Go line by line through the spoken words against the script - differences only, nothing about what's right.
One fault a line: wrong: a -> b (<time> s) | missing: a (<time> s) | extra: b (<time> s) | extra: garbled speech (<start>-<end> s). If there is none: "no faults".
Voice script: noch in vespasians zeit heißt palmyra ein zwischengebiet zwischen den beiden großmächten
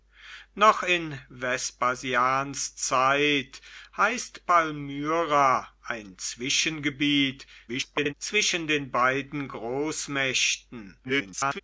extra: garbled speech (7.7-8.1 s)
extra: garbled speech (11.0-11.6 s)